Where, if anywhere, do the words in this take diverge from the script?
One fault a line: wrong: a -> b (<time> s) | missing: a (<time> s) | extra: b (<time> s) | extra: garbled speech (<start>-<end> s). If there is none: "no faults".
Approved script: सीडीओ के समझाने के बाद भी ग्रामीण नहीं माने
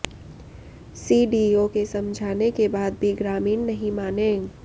no faults